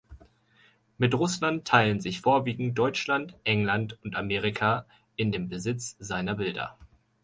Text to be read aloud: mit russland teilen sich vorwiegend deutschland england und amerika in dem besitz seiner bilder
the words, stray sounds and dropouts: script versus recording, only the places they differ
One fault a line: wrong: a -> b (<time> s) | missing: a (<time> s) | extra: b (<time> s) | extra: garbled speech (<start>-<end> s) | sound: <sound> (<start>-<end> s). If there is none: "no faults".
no faults